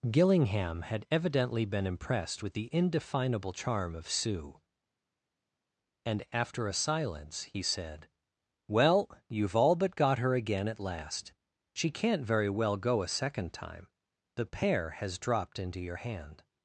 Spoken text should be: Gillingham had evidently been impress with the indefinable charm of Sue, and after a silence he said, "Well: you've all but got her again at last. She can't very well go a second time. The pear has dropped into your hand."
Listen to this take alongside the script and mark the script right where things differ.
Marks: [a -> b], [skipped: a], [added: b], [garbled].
Gillingham had evidently been [impress -> impressed] with the indefinable charm of Sue, and after a silence he said, "Well: you've all but got her again at last. She can't very well go a second time. The pear has dropped into your hand."